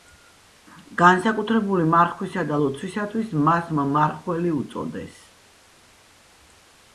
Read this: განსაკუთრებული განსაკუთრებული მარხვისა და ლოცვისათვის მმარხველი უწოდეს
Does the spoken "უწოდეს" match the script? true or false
true